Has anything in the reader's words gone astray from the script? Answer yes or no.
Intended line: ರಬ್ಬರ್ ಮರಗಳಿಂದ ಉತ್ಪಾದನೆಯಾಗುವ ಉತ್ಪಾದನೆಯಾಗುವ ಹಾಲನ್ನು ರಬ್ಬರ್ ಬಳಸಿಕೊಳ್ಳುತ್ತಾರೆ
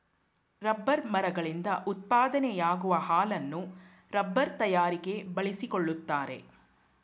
yes